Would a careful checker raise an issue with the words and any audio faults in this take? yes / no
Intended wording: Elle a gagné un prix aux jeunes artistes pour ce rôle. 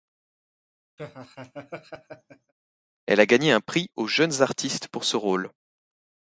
yes